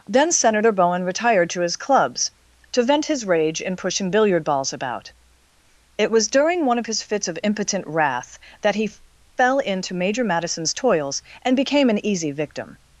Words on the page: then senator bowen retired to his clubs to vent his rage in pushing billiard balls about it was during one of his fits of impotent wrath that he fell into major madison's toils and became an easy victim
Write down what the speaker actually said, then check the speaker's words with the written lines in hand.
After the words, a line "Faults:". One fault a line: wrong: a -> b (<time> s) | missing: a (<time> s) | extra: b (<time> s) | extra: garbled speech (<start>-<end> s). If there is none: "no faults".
then senator bowen retired to his clubs to vent his rage in pushing billiard balls about it was during one of his fits of impotent wrath that he fell into major madison's toils and became an easy victim
Faults:
no faults